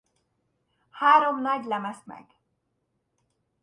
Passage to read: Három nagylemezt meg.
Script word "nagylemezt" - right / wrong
right